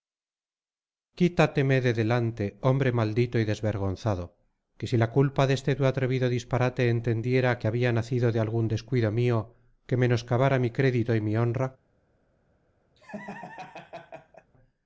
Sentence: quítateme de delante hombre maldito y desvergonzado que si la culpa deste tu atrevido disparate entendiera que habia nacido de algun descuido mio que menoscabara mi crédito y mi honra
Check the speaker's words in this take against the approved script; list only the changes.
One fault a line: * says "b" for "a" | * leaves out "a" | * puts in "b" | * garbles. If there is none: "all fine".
all fine